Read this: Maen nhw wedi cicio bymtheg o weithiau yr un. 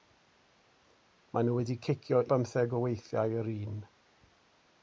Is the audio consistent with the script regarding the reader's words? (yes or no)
yes